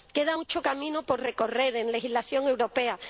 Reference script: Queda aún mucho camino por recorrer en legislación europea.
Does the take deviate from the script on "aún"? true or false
true